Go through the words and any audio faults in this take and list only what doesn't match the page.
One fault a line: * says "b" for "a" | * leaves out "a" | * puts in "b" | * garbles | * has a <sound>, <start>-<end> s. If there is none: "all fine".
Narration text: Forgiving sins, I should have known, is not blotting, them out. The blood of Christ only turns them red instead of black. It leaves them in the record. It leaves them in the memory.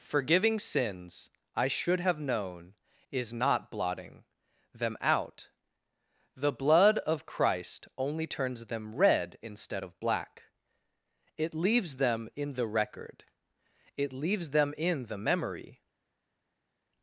all fine